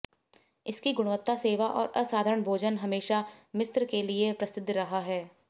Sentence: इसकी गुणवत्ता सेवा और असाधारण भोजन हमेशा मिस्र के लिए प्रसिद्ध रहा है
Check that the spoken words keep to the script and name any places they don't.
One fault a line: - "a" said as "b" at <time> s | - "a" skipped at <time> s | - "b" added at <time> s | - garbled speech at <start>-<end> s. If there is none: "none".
none